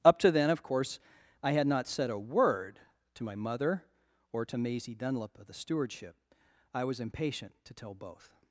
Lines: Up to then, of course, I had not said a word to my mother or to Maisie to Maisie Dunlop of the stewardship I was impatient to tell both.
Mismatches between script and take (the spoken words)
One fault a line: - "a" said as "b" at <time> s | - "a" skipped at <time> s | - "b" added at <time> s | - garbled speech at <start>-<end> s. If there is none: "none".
- "to Maisie" skipped at 5.0 s